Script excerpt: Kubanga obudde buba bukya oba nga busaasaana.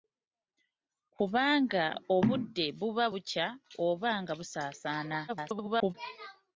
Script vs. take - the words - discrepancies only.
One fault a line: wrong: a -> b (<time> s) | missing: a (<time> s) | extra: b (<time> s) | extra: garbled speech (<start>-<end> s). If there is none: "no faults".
extra: garbled speech (5.3-5.9 s)